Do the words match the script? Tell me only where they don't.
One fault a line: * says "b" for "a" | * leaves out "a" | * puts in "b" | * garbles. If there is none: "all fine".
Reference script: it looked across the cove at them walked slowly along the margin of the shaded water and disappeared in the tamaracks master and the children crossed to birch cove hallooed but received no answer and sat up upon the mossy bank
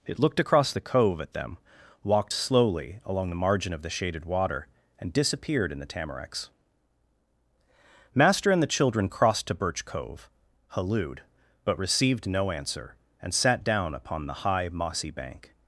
* says "down" for "up"
* puts in "high"